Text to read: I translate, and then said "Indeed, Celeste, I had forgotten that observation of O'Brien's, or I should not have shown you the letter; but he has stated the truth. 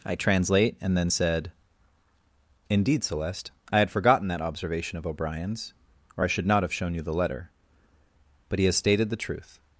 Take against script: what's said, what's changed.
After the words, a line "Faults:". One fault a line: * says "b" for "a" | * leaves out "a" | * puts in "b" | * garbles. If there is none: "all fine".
I translate, and then said "Indeed, Celeste, I had forgotten that observation of O'Brien's, or I should not have shown you the letter; but he has stated the truth.
Faults:
all fine